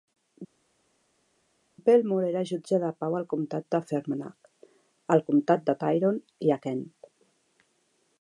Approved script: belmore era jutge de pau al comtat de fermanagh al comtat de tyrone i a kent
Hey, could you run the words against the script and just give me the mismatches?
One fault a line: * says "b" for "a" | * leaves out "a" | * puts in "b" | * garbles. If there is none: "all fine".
all fine